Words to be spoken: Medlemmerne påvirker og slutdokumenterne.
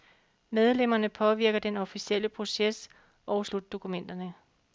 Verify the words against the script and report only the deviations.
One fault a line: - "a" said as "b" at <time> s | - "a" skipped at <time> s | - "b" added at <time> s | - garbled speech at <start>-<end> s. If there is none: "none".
- "den officielle proces" added at 1.6 s